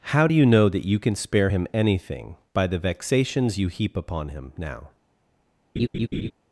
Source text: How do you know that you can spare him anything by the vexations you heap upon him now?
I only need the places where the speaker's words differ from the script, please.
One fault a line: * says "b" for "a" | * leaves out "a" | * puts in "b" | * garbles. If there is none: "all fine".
all fine